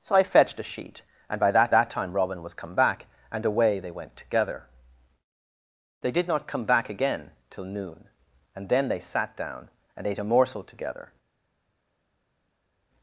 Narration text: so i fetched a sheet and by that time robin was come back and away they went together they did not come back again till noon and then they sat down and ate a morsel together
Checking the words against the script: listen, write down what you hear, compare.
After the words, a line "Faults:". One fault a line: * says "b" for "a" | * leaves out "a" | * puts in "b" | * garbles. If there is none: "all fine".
so i fetched a sheet and by that that time robin was come back and away they went together they did not come back again till noon and then they sat down and ate a morsel together
Faults:
* puts in "that"